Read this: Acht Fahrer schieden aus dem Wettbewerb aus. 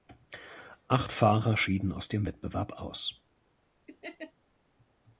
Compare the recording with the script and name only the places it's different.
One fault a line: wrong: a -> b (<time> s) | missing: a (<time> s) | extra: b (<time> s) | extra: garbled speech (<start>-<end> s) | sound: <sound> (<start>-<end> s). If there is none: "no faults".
sound: laugh (3.9-4.3 s)